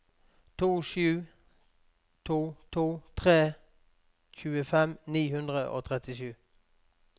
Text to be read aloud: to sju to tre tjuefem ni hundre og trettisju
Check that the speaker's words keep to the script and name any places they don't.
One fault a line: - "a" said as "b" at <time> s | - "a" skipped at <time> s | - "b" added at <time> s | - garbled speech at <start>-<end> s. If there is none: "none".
- "to" added at 2.7 s